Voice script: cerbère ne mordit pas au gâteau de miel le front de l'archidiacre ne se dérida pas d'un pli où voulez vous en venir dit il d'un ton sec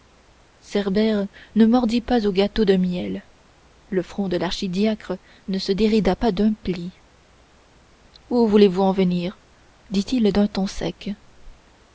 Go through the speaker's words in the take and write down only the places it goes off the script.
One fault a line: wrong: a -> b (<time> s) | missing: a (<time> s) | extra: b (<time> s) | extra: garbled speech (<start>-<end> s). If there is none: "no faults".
no faults